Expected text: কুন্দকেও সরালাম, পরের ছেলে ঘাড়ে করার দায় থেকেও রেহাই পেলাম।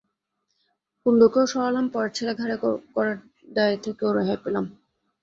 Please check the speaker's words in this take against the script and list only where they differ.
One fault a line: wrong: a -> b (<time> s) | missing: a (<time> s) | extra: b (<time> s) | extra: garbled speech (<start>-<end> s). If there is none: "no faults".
no faults